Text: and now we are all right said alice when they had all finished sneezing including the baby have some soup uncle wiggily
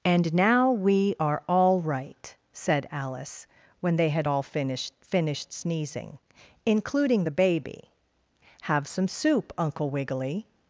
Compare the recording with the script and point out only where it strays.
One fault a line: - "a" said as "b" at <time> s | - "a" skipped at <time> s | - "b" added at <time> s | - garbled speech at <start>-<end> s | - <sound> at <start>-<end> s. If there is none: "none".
- "finished" added at 5.0 s